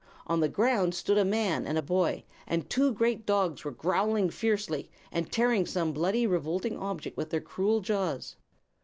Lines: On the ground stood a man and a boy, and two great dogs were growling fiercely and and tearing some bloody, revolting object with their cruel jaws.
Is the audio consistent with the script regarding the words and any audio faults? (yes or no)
no